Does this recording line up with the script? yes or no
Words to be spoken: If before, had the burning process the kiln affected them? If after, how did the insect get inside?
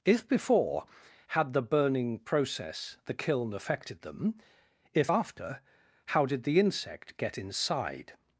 yes